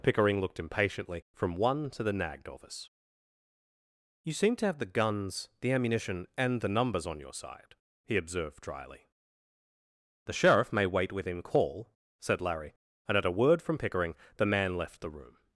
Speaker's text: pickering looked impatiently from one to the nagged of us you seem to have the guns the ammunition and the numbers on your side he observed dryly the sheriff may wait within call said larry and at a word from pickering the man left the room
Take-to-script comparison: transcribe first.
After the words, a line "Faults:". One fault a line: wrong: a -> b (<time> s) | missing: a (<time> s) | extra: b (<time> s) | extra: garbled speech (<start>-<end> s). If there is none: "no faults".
pickering looked impatiently from one to the nagged of us you seem to have the guns the ammunition and the numbers on your side he observed dryly the sheriff may wait within call said larry and at a word from pickering the man left the room
Faults:
no faults